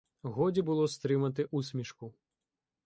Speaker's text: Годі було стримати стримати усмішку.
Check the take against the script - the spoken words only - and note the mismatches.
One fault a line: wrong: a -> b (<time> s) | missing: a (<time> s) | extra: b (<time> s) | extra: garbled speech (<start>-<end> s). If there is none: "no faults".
missing: стримати (1.4 s)